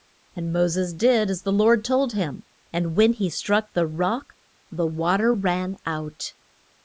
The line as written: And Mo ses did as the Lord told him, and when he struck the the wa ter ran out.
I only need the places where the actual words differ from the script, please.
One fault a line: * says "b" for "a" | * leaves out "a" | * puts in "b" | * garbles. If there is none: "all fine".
* puts in "rock"